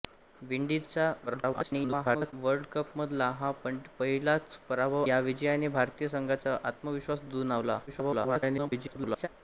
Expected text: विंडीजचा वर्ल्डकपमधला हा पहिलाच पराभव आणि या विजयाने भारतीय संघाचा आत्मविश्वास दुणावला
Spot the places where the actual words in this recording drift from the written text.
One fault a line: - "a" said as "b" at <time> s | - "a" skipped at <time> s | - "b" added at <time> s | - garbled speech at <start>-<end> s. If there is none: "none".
- garbled speech at 1.3-2.3 s
- "आणि" skipped at 5.0 s
- garbled speech at 7.9-9.3 s